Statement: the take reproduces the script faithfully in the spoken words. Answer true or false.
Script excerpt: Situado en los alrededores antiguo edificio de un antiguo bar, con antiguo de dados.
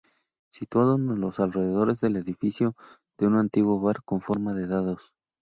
false